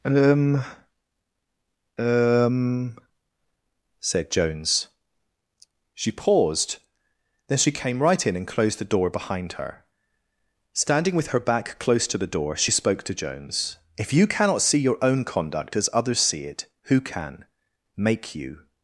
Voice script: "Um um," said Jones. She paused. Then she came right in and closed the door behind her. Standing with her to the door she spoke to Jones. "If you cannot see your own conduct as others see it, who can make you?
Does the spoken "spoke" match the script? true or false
true